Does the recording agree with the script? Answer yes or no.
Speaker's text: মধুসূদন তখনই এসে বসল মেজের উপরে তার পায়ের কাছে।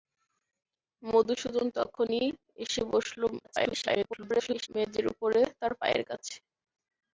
no